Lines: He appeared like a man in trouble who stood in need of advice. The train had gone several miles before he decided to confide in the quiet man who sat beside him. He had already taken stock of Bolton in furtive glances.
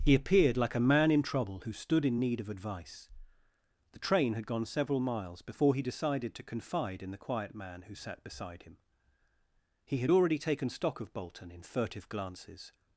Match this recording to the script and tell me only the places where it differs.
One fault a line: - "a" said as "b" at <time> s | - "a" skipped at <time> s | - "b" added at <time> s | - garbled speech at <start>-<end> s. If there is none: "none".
none